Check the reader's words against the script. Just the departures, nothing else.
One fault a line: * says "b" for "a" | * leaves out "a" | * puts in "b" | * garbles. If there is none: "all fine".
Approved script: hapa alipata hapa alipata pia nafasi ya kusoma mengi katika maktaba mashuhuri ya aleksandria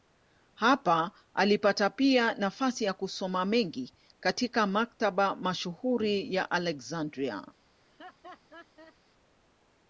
* leaves out "hapa alipata"